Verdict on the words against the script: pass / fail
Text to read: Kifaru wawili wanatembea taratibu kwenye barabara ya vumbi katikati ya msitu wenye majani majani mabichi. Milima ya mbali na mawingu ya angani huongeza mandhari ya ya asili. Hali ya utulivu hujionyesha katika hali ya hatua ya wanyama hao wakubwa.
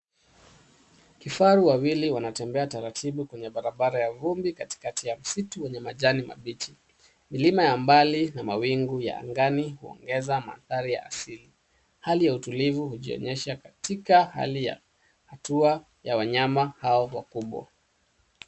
fail